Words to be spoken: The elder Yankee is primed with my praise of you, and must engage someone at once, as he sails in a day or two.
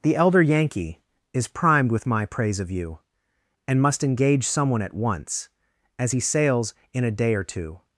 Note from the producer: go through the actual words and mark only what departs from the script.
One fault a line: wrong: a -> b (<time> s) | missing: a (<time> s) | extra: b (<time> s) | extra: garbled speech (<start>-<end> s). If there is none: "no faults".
no faults